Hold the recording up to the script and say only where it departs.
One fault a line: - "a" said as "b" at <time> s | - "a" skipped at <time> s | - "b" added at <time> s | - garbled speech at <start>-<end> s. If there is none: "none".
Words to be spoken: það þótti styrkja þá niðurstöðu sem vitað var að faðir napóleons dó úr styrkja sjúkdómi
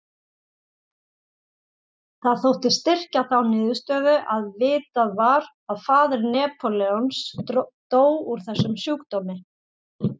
- "sem" said as "að" at 4.4 s
- "styrkja" said as "þessum" at 8.5 s